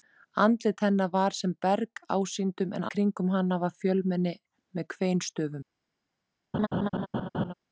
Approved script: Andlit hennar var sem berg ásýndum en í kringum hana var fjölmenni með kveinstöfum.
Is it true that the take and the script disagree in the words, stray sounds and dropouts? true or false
true